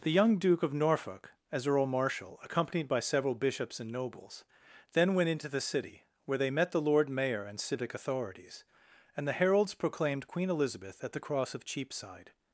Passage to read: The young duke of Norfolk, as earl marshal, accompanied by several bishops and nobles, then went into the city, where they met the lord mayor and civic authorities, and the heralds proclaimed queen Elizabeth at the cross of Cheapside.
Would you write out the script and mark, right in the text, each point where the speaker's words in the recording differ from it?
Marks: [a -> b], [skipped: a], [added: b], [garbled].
The young duke of Norfolk, as earl marshal, accompanied by several bishops and nobles, then went into the city, where they met the lord mayor and civic authorities, and the heralds proclaimed queen Elizabeth at the cross of Cheapside.